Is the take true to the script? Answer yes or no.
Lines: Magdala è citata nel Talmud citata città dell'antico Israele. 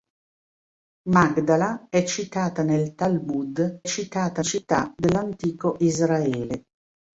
yes